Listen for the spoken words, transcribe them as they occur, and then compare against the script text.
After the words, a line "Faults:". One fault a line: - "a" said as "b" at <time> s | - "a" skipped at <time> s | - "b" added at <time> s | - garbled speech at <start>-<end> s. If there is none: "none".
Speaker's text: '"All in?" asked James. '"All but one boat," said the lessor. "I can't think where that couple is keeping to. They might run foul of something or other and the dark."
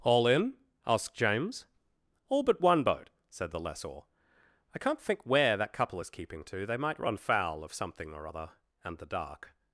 '"All in?" asked James. '"All but one boat," said the lessor. "I can't think where that couple is keeping to. They might run foul of something or other and the dark."
Faults:
none